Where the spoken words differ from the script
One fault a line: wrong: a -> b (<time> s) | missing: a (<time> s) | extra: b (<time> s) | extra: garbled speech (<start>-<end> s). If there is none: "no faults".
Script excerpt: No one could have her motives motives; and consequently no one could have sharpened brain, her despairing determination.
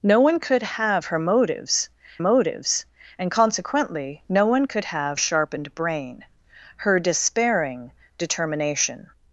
no faults